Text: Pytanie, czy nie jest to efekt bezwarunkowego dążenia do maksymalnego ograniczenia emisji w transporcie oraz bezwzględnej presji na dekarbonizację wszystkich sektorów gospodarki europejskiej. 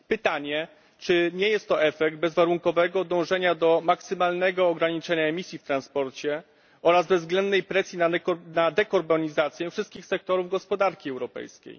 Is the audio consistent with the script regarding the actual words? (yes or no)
yes